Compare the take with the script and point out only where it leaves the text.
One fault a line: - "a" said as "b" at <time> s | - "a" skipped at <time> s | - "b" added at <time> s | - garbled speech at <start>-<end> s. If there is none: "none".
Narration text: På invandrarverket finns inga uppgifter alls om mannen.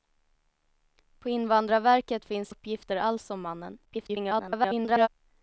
- "inga" skipped at 2.5 s
- garbled speech at 3.8-5.1 s